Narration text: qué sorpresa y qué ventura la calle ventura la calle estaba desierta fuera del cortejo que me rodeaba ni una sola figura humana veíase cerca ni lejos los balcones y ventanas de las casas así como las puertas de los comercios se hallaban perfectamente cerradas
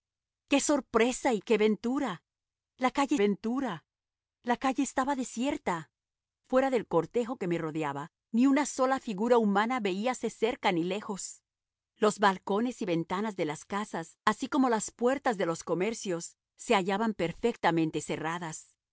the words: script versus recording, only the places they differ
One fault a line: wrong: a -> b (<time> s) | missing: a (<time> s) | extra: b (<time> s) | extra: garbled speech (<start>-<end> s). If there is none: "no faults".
no faults